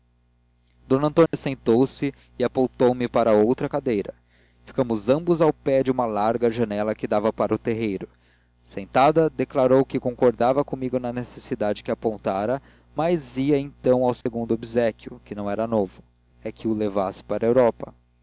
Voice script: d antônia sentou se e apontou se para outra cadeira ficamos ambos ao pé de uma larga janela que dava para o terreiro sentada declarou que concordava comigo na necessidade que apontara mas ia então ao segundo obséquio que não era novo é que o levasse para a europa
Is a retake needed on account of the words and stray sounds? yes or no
yes